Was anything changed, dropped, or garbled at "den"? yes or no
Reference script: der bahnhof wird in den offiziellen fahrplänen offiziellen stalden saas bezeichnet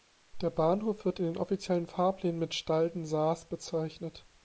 no